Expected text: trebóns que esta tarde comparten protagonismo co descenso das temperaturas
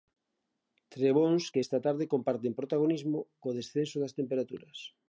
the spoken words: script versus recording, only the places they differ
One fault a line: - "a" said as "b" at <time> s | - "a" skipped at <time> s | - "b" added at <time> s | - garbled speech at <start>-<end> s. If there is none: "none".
none